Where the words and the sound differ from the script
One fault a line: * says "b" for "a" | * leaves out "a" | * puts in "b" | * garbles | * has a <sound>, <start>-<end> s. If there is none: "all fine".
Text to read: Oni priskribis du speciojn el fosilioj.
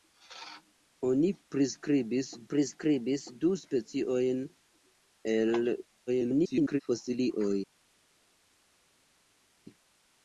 * puts in "priskribis"
* garbles